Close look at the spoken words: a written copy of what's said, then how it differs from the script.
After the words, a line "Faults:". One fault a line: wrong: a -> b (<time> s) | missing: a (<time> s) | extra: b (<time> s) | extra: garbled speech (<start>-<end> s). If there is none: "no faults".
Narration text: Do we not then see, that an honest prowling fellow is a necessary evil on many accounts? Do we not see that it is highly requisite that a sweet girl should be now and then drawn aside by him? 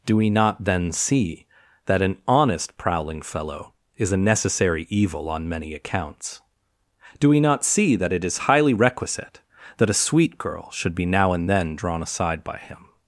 Do we not then see, that an honest prowling fellow is a necessary evil on many accounts? Do we not see that it is highly requisite that a sweet girl should be now and then drawn aside by him?
Faults:
no faults